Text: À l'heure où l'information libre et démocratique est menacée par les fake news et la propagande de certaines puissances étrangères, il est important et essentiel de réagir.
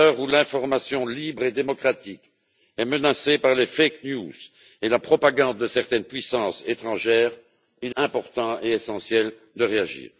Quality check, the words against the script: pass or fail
fail